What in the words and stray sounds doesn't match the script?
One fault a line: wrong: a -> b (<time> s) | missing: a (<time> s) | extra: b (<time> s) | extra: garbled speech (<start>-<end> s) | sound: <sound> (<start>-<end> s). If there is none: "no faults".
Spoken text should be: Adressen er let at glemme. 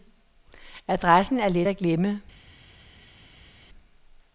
no faults